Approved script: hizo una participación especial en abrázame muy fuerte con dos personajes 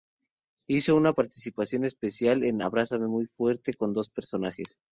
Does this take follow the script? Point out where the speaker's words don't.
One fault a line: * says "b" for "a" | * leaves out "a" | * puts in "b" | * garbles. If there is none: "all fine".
all fine